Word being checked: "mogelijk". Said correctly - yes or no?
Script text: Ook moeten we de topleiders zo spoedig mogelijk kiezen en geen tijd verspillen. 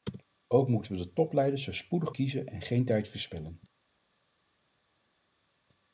no